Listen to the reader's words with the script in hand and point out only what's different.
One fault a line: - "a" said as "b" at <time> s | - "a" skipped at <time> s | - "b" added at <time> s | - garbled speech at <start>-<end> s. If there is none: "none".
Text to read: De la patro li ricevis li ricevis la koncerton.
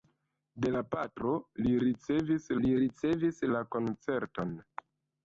none